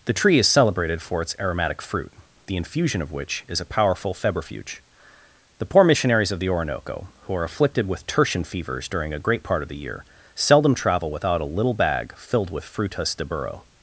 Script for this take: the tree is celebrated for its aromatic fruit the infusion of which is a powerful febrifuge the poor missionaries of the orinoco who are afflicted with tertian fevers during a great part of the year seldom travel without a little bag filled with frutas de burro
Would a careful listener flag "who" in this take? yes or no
no